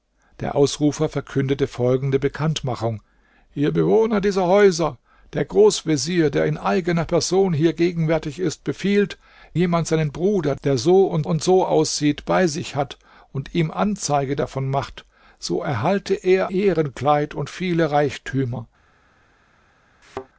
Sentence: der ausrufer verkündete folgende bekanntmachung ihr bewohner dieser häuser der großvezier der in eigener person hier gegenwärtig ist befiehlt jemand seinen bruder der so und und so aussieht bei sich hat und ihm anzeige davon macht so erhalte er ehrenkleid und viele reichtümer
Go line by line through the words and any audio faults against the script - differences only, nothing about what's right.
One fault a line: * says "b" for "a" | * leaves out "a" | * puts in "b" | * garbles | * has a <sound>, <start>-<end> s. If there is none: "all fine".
* has a thud, 20.0-20.3 s